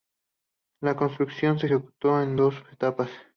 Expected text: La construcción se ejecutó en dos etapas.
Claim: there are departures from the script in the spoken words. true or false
false